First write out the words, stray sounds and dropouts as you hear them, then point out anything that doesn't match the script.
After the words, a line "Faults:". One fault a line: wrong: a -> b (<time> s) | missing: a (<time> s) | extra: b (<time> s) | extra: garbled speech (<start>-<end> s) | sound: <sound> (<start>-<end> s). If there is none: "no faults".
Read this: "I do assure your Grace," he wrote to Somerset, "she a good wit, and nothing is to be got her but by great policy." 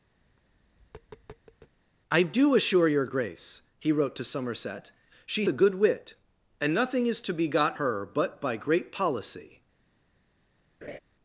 "I do assure your Grace," he wrote to Somerset, "she a good wit, and nothing is to be got her but by great policy."
Faults:
sound: tap (0.2-1.8 s)
sound: laugh (10.8-11.0 s)